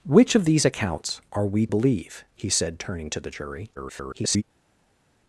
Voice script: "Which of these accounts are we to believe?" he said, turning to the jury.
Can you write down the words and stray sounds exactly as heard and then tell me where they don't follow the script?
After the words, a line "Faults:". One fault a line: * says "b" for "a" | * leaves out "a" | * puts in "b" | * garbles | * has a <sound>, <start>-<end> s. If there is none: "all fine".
"Which of these accounts are we believe?" he said, turning to the jury. [garbled]
Faults:
* leaves out "to"
* garbles